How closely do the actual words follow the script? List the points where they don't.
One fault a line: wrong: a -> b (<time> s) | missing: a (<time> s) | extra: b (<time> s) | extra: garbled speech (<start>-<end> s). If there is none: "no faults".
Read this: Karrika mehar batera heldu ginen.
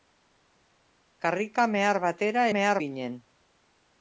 wrong: heldu -> mehar (2.6 s)